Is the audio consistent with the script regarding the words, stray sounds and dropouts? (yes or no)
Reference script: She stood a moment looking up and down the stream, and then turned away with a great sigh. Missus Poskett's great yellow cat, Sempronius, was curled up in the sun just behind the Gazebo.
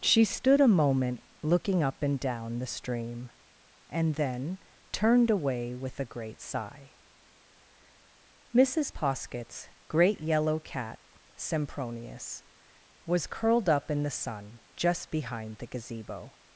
yes